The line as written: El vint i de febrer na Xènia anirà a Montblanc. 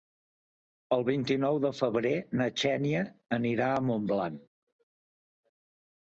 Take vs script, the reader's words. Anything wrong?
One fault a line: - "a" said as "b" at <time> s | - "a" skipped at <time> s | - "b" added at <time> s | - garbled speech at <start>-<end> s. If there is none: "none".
- "nou" added at 1.4 s